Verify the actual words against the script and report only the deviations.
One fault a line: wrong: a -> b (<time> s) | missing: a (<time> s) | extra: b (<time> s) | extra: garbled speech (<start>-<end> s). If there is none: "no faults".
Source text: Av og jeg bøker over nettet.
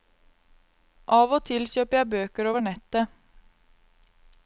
extra: til kjøper (1.5 s)